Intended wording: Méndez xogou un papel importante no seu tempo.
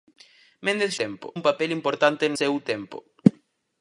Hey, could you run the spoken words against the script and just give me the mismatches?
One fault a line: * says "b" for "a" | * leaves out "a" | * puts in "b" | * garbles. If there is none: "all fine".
* says "tempo" for "xogou"
* leaves out "no"